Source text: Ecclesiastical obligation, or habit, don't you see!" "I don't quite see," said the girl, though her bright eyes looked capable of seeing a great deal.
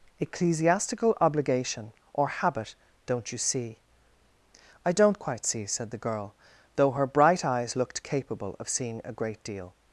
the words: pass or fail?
pass